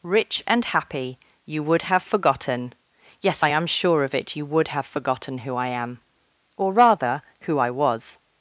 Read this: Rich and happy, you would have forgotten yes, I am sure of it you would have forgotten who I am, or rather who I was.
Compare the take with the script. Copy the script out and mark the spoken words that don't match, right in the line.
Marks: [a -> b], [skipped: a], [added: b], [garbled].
Rich and happy, you would have forgotten yes, I am sure of it you would have forgotten who I am, or rather who I was.